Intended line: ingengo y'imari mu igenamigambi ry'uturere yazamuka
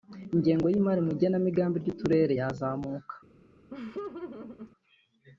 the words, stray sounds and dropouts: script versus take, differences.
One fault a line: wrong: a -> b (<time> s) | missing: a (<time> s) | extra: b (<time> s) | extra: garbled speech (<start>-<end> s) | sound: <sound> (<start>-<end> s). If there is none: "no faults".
sound: laugh (3.7-4.7 s)